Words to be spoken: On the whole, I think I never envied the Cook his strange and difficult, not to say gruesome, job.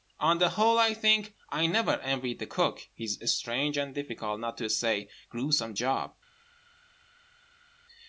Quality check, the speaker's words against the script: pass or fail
pass